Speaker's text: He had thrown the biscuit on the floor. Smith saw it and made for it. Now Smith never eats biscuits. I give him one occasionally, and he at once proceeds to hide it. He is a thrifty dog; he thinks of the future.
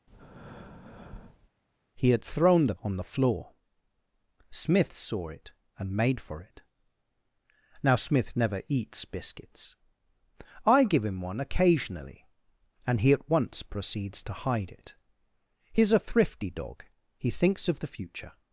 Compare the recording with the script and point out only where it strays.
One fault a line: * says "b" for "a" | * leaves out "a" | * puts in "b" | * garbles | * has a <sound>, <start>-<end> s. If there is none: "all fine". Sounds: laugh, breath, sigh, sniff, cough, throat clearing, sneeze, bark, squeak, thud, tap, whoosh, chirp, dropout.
* has a breath, 0.1-1.5 s
* leaves out "biscuit"